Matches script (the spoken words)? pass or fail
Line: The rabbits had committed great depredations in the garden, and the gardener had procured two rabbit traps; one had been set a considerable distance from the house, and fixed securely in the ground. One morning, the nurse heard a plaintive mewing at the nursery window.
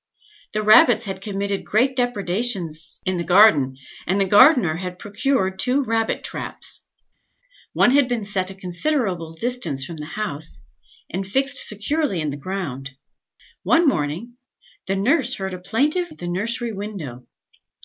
fail